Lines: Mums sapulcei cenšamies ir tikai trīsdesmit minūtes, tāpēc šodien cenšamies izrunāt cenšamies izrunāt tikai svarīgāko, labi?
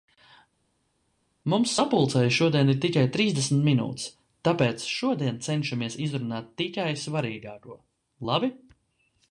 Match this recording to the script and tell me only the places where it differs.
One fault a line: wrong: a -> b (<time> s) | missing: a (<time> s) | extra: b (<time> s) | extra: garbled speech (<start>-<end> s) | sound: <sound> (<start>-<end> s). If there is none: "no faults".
wrong: cenšamies -> šodien (2.4 s)
missing: cenšamies izrunāt (6.5 s)